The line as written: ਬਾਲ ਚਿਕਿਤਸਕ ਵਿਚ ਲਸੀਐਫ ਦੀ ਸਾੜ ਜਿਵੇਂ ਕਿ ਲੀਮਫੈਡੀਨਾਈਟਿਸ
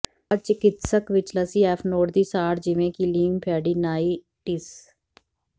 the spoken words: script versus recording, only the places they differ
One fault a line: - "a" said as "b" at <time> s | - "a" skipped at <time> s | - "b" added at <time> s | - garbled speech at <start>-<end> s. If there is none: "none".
- "ਨੋਡ" added at 1.9 s